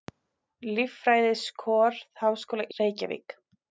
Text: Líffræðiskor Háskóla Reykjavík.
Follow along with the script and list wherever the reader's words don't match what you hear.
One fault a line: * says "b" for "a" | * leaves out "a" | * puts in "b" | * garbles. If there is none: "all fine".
all fine